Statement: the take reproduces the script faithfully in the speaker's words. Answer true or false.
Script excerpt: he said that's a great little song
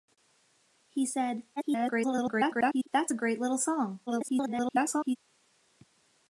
false